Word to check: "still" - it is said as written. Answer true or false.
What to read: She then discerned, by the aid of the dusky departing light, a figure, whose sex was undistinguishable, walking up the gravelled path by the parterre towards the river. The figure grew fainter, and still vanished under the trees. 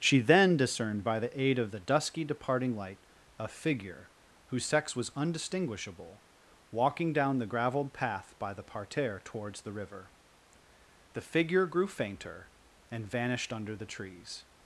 false